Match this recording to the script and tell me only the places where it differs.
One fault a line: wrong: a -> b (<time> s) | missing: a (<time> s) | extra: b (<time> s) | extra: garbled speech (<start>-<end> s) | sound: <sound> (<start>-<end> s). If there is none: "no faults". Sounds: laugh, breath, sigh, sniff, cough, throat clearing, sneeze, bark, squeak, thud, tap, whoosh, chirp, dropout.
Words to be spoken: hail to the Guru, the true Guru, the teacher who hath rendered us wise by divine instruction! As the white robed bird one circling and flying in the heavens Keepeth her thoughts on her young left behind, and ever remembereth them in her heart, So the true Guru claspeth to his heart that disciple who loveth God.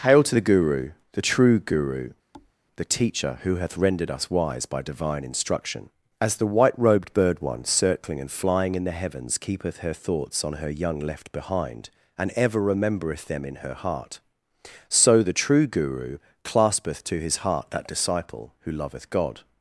sound: thud (2.3-2.5 s)